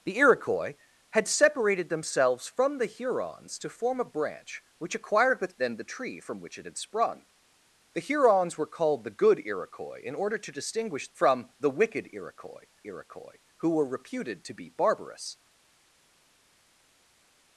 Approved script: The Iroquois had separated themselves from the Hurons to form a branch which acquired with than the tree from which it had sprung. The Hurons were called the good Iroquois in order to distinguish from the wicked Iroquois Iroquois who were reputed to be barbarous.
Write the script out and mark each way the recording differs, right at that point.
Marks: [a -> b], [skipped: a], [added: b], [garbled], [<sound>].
The Iroquois had separated themselves from the Hurons to form a branch which acquired with than the tree from which it had sprung. The Hurons were called the good Iroquois in order to distinguish from the wicked Iroquois Iroquois who were reputed to be barbarous.